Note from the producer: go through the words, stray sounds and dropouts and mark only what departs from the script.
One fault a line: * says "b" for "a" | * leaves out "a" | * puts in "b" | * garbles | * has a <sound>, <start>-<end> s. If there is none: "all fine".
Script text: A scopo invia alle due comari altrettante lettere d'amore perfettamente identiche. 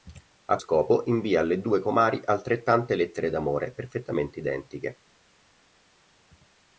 all fine